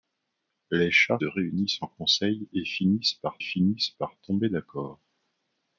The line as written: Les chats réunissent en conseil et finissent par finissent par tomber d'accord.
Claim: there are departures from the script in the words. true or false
false